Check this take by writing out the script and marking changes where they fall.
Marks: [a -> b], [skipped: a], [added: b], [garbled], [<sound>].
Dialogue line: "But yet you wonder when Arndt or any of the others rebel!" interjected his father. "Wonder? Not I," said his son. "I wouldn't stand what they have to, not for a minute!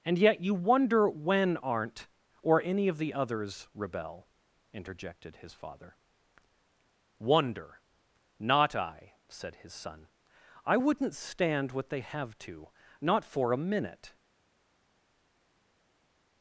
["But -> And] yet you wonder when Arndt or any of the others rebel!" interjected his father. "Wonder? Not I," said his son. "I wouldn't stand what they have to, not for a minute!